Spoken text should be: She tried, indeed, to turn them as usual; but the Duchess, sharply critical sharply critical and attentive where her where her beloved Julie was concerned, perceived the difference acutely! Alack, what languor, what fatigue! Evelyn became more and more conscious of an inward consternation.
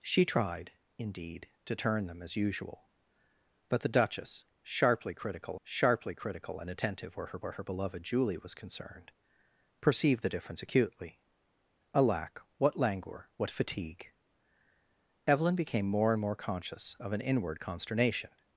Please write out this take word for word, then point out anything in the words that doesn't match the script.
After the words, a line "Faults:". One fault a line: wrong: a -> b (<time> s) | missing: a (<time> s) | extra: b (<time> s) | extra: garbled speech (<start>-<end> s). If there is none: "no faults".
She tried, indeed, to turn them as usual; but the Duchess, sharply critical sharply critical and attentive where her where her beloved Julie was concerned, perceived the difference acutely! Alack, what languor, what fatigue! Evelyn became more and more conscious of an inward consternation.
Faults:
no faults